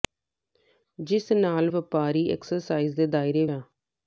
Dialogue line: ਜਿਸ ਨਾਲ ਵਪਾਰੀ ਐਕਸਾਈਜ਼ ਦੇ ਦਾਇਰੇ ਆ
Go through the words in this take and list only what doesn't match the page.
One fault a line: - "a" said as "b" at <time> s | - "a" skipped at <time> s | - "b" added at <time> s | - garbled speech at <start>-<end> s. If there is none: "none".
none